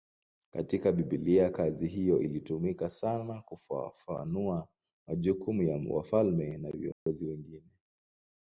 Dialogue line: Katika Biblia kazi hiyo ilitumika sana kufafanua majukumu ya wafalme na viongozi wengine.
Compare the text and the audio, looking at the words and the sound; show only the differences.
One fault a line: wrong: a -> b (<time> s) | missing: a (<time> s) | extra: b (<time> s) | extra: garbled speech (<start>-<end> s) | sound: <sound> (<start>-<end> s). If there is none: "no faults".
sound: dropout (6.9-7.1 s)